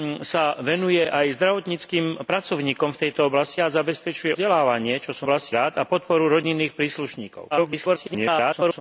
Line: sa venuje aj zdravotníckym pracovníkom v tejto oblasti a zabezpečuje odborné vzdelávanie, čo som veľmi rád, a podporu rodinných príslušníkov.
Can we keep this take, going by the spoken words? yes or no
no